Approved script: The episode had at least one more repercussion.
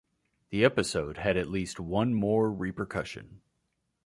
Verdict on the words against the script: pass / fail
pass